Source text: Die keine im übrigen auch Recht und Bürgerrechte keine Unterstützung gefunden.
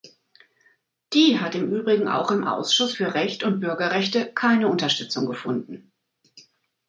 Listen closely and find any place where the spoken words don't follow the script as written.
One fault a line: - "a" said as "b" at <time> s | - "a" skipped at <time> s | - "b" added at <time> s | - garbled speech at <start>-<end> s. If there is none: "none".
- "keine" said as "hat" at 1.4 s
- "im Ausschuss für" added at 2.3 s